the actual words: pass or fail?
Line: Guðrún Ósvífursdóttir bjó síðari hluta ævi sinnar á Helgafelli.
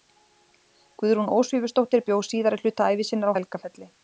pass